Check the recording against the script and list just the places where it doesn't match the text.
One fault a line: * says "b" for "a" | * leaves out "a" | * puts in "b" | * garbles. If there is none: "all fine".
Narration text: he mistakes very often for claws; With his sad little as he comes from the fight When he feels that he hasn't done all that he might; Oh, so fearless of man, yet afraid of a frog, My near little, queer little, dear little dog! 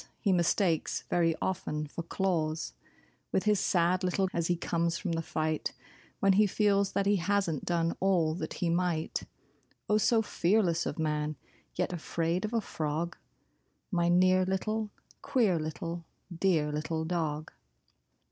all fine